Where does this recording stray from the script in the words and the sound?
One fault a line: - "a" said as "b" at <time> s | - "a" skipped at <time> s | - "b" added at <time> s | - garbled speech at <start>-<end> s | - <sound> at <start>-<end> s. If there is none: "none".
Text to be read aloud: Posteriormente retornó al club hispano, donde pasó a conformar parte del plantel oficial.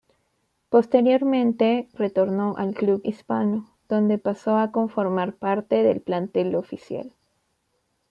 none